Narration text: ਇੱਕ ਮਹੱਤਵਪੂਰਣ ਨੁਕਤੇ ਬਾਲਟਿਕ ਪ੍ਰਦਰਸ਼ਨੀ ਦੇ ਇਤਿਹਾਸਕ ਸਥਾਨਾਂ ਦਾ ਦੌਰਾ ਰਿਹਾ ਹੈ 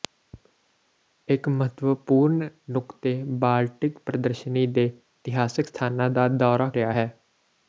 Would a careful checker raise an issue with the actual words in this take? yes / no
no